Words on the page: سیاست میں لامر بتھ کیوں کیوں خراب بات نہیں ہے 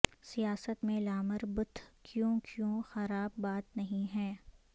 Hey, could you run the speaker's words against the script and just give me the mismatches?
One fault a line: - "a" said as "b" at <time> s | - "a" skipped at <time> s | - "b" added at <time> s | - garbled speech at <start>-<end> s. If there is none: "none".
none